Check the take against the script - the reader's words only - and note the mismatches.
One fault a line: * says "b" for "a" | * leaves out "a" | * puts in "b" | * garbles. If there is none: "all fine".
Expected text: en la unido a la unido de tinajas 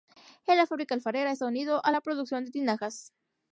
* puts in "fábrica alfarera está"
* says "producción" for "unido"